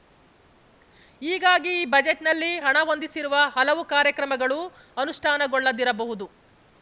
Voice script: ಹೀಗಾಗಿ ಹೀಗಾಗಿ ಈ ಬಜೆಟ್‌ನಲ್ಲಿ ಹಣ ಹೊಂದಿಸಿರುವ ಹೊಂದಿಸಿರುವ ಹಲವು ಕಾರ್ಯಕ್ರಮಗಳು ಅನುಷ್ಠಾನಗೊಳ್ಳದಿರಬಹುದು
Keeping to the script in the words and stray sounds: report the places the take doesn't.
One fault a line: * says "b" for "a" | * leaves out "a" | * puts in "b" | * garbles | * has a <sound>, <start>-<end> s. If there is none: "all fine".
* leaves out "ಹೀಗಾಗಿ"
* leaves out "ಹೊಂದಿಸಿರುವ"